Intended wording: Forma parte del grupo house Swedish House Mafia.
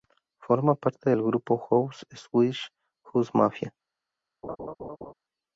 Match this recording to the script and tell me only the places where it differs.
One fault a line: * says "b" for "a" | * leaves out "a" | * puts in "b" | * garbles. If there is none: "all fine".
all fine